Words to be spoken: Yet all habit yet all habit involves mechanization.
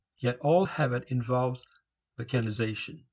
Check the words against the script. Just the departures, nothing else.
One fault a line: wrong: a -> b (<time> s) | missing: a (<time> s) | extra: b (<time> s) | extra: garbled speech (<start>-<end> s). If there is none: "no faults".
missing: yet all habit (1.0 s)